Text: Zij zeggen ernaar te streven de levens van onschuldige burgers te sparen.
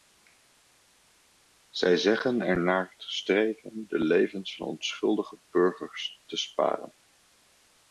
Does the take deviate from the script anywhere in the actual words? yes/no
no